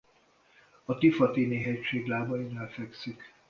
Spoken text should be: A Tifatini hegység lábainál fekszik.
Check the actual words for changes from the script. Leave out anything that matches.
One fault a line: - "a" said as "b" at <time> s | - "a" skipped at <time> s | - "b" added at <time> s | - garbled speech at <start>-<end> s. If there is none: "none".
none